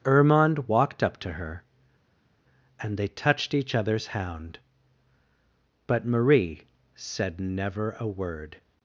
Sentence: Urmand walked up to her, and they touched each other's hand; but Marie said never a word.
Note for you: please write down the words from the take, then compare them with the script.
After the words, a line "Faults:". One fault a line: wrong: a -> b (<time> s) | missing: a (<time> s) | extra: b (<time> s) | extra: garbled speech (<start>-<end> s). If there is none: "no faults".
Urmand walked up to her, and they touched each other's hound; but Marie said never a word.
Faults:
wrong: hand -> hound (4.1 s)